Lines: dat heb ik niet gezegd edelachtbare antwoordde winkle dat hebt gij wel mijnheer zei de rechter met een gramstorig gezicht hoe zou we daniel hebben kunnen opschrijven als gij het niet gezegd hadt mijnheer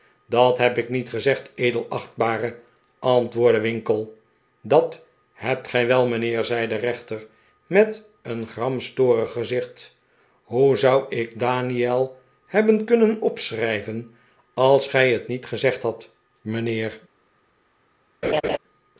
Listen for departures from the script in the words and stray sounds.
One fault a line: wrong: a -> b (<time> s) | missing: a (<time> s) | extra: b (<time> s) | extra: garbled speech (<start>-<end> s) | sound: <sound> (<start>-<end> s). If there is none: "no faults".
wrong: we -> ik (11.2 s)
sound: laugh (18.2-18.6 s)